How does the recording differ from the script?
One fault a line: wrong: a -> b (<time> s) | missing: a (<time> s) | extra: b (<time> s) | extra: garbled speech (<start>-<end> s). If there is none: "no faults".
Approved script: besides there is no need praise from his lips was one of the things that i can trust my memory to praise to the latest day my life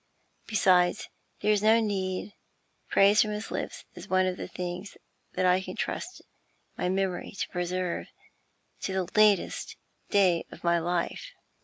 wrong: was -> is (3.9 s)
wrong: praise -> preserve (7.5 s)
extra: of (10.5 s)